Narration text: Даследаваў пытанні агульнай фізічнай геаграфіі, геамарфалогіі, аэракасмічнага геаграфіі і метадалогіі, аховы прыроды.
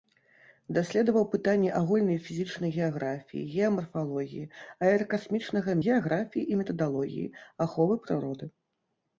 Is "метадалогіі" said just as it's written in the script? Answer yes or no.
yes